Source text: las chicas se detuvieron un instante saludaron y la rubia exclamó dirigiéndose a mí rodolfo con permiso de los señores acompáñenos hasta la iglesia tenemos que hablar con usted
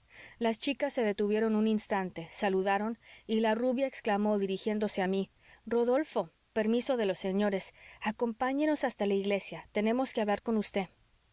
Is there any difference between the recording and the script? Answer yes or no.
yes